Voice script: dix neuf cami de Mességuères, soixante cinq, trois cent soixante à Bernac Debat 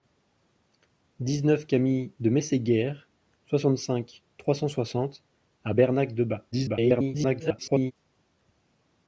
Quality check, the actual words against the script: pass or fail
fail